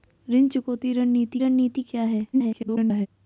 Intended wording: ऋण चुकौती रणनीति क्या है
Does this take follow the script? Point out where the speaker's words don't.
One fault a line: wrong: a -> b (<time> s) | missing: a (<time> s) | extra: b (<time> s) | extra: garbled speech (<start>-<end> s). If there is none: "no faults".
extra: रणनीति (1.4 s)
extra: garbled speech (2.3-3.1 s)